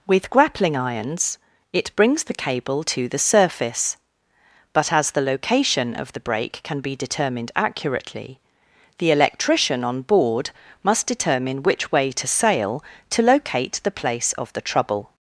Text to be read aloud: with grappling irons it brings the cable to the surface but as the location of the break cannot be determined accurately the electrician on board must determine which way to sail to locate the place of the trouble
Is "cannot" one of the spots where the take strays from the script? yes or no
yes